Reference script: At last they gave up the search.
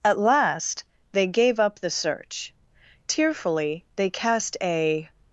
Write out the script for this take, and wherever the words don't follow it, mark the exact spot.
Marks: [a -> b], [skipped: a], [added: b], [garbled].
At last they gave up the search. [added: Tearfully they cast a]